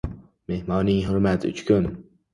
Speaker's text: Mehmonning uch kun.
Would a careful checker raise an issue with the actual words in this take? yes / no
yes